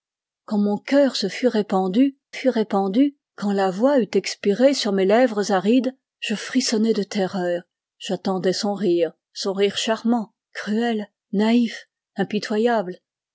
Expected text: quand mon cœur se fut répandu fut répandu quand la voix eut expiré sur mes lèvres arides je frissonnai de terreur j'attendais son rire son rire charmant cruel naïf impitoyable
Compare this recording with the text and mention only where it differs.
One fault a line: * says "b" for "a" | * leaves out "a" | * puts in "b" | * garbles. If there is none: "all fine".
all fine